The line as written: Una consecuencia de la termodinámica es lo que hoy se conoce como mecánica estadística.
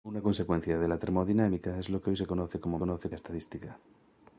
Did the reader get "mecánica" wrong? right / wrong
wrong